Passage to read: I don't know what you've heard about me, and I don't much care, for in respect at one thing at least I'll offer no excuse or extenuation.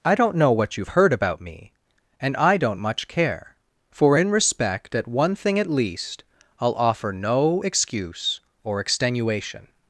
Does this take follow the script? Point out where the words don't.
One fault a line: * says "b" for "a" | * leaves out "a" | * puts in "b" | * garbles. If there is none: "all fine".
all fine